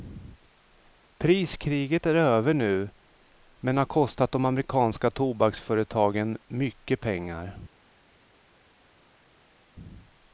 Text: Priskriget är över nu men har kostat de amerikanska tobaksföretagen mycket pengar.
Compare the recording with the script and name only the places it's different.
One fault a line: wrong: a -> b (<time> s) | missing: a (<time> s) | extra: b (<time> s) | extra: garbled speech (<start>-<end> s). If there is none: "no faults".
no faults